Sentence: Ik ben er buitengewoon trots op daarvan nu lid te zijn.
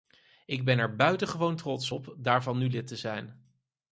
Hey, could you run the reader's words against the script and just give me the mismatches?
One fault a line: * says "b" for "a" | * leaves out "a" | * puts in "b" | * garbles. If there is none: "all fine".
all fine